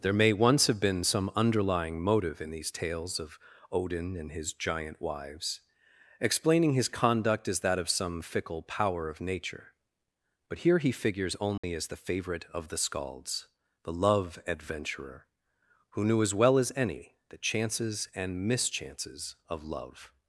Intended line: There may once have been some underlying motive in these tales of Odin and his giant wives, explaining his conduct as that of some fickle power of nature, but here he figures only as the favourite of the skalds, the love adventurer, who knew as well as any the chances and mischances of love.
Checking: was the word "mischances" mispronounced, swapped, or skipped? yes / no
no